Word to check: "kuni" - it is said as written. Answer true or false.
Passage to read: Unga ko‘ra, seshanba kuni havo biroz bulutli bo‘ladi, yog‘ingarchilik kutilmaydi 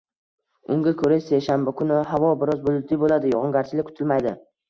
true